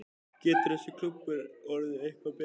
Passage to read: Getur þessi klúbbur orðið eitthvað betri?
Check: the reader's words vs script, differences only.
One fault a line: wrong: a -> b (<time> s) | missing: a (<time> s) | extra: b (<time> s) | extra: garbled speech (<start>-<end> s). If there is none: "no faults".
no faults